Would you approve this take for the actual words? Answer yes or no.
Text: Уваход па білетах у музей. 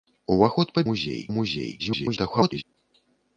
no